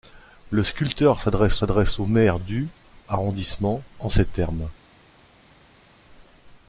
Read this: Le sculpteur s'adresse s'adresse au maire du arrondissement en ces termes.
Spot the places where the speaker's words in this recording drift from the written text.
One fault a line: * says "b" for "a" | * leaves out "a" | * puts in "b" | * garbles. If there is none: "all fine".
all fine